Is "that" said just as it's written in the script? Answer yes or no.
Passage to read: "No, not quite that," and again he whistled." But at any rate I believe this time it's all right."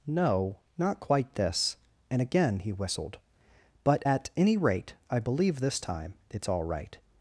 no